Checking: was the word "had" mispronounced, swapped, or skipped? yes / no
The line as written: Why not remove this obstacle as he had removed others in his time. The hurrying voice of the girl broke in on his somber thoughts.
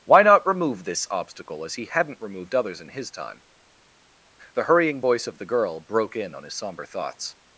yes